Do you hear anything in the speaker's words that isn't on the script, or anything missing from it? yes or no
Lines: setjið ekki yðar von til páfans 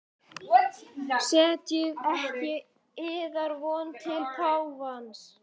no